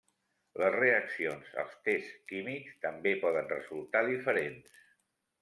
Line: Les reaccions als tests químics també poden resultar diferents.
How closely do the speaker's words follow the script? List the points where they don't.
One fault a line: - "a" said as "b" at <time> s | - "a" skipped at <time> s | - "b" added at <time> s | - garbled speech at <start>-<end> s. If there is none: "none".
none